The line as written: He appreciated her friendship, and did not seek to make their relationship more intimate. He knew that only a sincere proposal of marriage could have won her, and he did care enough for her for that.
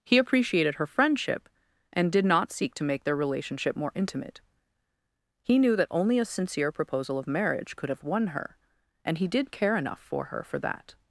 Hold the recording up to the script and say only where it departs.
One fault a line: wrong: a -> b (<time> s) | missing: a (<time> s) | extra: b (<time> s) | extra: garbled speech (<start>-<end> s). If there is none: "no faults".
no faults